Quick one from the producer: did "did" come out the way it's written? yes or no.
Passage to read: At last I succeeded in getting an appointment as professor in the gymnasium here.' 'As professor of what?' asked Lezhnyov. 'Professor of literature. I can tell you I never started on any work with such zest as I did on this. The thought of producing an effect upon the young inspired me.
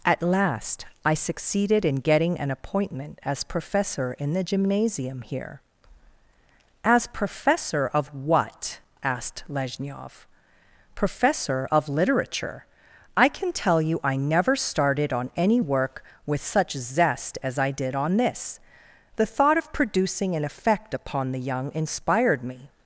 yes